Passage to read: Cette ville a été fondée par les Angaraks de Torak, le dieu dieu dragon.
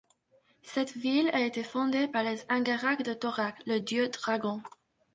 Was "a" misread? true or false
false